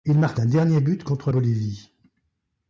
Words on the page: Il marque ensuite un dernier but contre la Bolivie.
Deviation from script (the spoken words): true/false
true